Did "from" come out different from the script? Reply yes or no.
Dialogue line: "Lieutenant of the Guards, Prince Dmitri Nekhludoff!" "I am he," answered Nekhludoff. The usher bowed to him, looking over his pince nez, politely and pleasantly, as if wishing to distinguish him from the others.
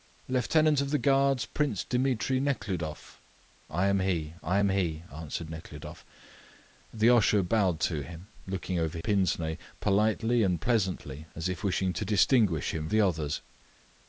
yes